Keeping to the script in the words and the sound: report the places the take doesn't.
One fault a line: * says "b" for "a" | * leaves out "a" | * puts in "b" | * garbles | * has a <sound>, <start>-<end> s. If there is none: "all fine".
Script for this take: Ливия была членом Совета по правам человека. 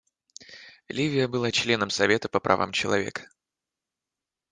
all fine